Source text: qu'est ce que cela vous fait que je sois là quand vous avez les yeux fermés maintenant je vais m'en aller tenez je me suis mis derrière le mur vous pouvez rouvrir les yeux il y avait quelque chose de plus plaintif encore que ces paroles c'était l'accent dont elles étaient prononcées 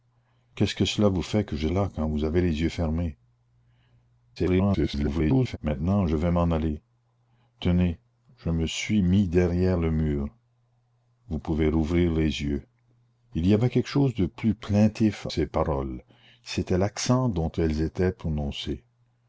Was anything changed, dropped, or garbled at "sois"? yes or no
yes